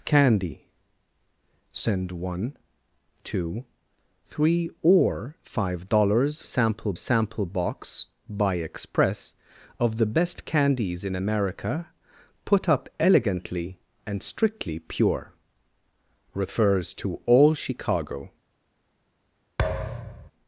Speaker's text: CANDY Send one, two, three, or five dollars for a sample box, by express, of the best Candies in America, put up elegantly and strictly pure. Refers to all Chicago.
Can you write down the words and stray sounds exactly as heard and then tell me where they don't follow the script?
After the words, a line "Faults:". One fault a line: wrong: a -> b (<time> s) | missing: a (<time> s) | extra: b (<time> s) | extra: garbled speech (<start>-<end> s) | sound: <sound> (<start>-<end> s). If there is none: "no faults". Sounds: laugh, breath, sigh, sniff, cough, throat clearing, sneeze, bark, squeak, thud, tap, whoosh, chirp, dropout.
CANDY Send one, two, three, or five dollars sample a sample box, by express, of the best Candies in America, put up elegantly and strictly pure. Refers to all Chicago.
Faults:
wrong: for -> sample (6.4 s)
sound: thud (19.6-20.3 s)